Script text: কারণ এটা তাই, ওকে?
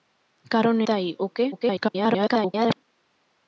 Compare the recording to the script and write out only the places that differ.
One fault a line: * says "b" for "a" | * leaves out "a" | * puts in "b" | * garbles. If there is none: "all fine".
* leaves out "এটা"
* garbles